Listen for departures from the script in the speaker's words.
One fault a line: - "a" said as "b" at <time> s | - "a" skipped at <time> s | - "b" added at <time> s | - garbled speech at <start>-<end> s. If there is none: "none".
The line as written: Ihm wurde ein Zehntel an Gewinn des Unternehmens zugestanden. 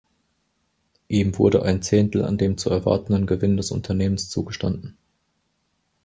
- "dem zu erwartenden" added at 2.4 s